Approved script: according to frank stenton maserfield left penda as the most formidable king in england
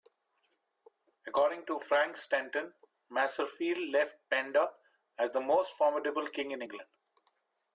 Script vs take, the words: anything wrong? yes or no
no